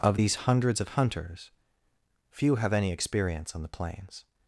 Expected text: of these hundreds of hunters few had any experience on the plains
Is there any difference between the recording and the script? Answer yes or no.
yes